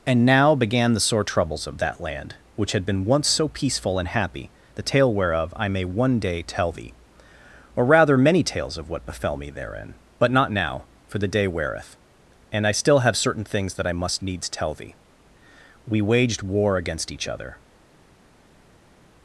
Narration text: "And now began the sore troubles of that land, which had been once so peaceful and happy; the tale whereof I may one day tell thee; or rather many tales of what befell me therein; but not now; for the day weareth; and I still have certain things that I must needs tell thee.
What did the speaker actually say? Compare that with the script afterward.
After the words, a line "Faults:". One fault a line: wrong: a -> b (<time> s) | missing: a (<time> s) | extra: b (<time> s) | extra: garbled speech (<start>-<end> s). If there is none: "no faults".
"And now began the sore troubles of that land, which had been once so peaceful and happy; the tale whereof I may one day tell thee; or rather many tales of what befell me therein; but not now; for the day weareth; and I still have certain things that I must needs tell thee. "We waged war against each other
Faults:
extra: We waged war against each other (15.8 s)